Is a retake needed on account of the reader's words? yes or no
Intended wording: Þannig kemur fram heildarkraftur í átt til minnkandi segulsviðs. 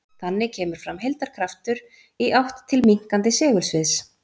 no